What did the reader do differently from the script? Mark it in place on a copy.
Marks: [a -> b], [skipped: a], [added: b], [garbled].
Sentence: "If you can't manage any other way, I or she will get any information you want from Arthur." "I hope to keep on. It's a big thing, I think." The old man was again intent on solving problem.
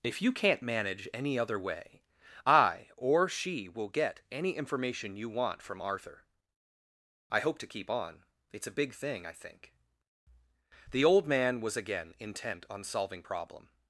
"If you can't manage any other way, I or she will get any information you want from Arthur." "I hope to keep on. It's a big thing, I think." The old man was again intent on solving problem.